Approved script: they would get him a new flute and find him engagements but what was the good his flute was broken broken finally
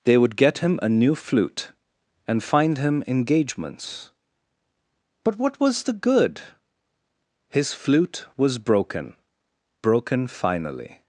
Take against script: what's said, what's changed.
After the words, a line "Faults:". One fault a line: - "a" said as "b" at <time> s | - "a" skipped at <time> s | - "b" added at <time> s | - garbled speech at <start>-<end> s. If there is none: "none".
they would get him a new flute and find him engagements but what was the good his flute was broken broken finally
Faults:
none